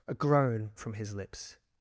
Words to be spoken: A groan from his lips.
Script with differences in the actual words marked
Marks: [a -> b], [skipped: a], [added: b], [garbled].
A groan from his lips.